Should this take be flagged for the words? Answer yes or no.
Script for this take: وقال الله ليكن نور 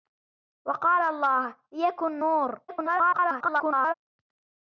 yes